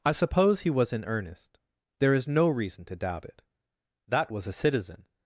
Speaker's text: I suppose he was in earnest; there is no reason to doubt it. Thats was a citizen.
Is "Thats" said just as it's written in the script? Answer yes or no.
no